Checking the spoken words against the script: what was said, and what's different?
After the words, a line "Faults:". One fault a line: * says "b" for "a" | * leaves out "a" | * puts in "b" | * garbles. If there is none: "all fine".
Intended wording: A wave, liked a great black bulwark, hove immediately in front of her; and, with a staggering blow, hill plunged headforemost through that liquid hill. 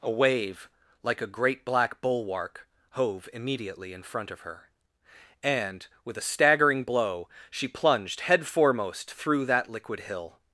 A wave, like a great black bulwark, hove immediately in front of her; and, with a staggering blow, she plunged headforemost through that liquid hill.
Faults:
* says "like" for "liked"
* says "she" for "hill"